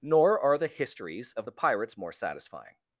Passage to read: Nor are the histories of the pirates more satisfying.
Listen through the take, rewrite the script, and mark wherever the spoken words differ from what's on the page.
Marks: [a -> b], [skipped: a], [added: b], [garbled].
Nor are the histories of the pirates more satisfying.